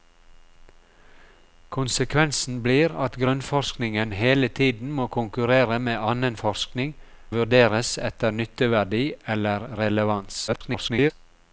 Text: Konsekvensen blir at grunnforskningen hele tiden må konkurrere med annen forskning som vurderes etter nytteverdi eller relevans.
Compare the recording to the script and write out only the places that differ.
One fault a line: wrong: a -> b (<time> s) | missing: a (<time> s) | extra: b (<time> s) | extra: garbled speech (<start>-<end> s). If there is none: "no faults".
missing: som (6.9 s)
extra: garbled speech (10.5-11.1 s)